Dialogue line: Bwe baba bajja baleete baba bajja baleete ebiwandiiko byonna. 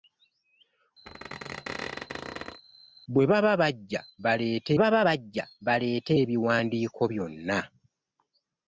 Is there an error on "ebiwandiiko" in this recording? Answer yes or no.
no